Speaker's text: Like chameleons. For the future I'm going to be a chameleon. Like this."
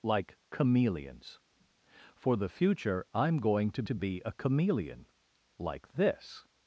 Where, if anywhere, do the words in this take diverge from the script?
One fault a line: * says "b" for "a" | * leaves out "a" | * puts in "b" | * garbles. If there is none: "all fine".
* puts in "to"